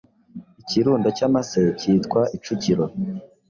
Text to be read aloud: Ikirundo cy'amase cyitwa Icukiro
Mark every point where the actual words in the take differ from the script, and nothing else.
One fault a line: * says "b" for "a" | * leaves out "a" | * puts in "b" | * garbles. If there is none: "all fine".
all fine